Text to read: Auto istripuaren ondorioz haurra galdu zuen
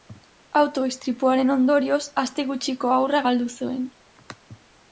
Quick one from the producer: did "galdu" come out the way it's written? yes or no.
yes